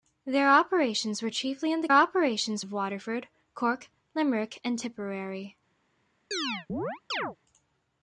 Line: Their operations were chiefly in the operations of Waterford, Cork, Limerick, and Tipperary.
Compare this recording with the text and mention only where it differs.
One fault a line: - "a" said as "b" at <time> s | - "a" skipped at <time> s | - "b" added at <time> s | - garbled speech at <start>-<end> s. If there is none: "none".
none